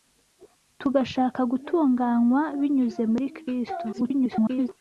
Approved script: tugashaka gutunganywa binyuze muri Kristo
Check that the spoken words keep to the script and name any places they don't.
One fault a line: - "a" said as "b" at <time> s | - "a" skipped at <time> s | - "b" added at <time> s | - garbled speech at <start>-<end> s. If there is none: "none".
- garbled speech at 3.9-4.7 s